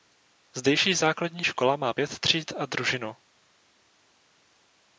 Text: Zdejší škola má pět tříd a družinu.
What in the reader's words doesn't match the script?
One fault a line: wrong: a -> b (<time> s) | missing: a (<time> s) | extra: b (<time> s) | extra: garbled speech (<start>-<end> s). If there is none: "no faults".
extra: základní (0.9 s)